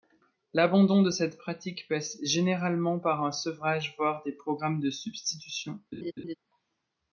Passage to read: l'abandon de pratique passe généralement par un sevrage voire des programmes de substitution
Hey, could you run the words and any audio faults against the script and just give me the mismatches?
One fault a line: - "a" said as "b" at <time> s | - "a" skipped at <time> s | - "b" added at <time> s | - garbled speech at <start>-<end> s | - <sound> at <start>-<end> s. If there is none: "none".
- "cette" added at 1.1 s
- laugh at 5.9-6.4 s